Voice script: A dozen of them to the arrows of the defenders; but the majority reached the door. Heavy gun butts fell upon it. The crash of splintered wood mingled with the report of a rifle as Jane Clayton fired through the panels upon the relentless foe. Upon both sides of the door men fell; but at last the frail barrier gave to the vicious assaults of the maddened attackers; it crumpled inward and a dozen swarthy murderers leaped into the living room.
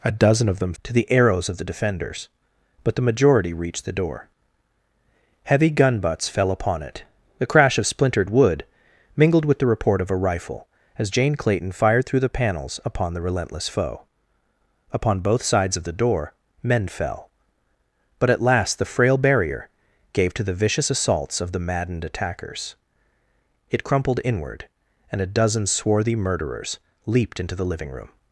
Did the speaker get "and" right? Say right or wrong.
right